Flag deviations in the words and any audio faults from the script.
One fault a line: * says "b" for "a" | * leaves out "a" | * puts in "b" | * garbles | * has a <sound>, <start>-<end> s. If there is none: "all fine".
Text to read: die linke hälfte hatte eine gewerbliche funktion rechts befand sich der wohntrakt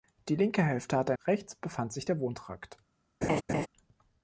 * leaves out "eine gewerbliche funktion"
* has a laugh, 3.2-3.7 s